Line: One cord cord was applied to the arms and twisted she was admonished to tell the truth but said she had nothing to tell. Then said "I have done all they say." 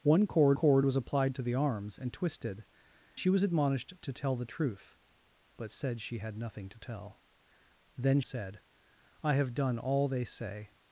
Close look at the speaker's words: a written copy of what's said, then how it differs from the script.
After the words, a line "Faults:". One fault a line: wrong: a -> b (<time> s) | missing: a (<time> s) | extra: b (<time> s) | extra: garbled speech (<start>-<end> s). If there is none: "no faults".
One cord cord was applied to the arms and twisted she was admonished to tell the truth but said she had nothing to tell. Then said "I have done all they say."
Faults:
no faults